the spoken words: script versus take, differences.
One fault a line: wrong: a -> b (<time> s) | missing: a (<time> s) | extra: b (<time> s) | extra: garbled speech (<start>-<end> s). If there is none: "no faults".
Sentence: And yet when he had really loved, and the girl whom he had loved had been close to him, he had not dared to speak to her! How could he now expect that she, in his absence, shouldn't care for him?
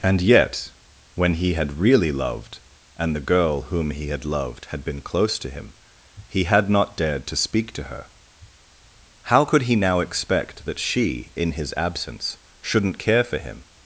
no faults